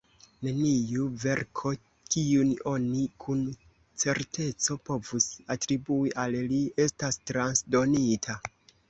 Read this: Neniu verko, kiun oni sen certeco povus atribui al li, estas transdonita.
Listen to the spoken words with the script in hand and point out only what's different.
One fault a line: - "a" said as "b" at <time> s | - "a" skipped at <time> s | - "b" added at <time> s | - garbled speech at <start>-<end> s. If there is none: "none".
- "sen" said as "kun" at 3.2 s